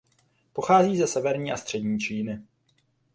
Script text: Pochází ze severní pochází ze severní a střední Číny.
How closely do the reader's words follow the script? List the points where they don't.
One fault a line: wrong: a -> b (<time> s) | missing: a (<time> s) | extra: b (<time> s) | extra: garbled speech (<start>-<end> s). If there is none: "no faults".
missing: pochází ze severní (1.5 s)